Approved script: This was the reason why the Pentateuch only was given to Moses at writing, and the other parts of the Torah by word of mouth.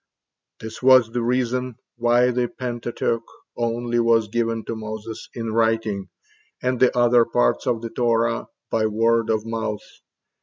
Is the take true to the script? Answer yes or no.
no